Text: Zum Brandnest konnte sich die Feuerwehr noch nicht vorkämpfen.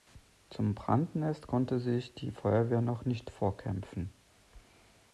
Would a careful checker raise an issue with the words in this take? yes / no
no